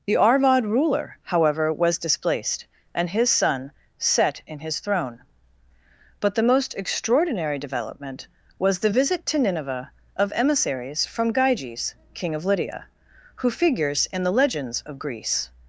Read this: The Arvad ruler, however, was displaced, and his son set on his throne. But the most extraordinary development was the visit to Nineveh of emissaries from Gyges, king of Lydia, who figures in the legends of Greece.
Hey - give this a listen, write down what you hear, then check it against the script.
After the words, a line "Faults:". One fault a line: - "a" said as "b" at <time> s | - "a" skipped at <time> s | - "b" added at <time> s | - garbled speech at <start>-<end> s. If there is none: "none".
The Arvad ruler, however, was displaced, and his son set in his throne. But the most extraordinary development was the visit to Nineveh of emissaries from Gyges, king of Lydia, who figures in the legends of Greece.
Faults:
- "on" said as "in" at 4.5 s